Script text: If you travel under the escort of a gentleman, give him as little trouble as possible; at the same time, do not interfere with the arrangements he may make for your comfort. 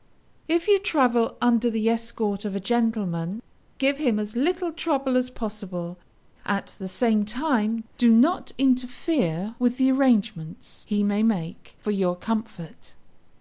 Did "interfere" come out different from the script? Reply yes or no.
no